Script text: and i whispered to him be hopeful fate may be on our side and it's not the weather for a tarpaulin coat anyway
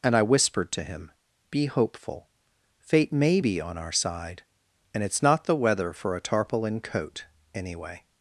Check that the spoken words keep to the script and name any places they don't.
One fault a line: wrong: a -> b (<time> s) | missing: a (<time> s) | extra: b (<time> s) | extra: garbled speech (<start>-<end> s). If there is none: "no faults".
no faults